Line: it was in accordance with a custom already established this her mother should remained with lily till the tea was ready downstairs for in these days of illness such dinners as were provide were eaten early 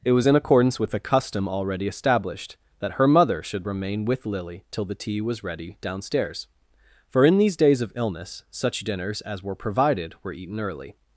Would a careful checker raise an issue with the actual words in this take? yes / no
yes